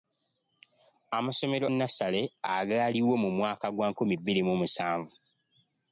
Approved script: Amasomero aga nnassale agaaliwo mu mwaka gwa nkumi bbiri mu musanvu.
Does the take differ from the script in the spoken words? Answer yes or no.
yes